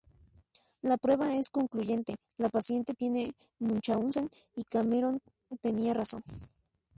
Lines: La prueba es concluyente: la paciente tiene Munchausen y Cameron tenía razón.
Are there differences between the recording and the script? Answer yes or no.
no